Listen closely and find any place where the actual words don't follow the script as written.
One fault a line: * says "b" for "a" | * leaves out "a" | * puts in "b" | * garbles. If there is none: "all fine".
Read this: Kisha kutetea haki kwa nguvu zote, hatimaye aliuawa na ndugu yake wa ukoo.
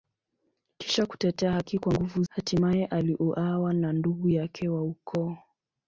* leaves out "zote"